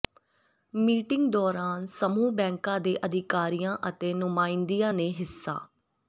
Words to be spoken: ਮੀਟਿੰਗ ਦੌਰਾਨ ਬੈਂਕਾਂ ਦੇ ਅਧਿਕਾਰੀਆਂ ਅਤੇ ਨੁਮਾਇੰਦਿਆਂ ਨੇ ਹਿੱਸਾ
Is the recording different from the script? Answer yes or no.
yes